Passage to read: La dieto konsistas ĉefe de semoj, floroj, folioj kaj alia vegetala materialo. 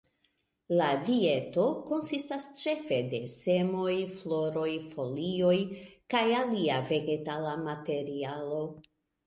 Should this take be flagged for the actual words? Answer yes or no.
no